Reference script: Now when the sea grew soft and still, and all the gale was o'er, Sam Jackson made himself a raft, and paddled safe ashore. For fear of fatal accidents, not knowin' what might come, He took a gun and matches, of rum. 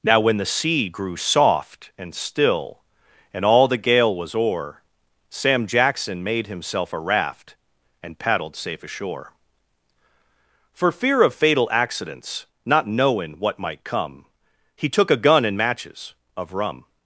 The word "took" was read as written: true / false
true